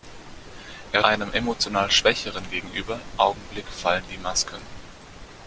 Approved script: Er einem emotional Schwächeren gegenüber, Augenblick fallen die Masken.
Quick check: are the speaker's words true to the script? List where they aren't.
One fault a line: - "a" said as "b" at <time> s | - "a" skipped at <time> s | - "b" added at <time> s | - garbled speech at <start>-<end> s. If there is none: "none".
none